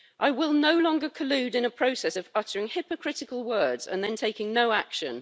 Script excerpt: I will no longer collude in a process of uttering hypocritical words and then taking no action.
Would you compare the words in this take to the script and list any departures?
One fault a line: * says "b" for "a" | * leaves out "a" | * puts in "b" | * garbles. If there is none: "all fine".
all fine